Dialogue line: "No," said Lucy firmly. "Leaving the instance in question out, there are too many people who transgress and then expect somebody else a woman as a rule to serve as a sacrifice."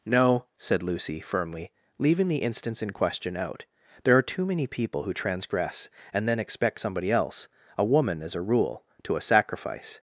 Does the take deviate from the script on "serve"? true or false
true